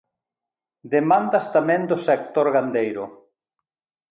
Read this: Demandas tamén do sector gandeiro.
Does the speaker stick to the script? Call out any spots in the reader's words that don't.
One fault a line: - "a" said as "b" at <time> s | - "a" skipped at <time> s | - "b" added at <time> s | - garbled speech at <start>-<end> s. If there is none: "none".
none